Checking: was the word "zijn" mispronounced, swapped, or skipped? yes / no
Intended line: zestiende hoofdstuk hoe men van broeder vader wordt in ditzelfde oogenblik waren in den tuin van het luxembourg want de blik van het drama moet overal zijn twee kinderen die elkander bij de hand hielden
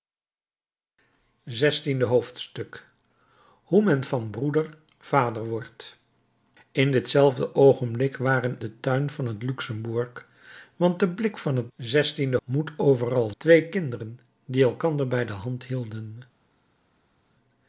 yes